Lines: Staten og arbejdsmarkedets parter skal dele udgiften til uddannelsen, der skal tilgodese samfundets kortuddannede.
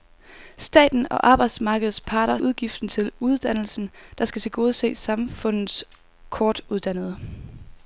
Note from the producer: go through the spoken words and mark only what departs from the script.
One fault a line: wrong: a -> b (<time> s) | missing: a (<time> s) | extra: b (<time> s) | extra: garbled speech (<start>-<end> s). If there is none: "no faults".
missing: skal dele (2.4 s)